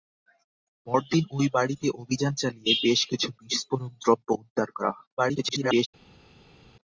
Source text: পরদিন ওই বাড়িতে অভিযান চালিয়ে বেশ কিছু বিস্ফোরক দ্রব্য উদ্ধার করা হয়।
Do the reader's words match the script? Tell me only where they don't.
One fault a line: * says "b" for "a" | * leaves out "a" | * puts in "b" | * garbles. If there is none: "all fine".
* garbles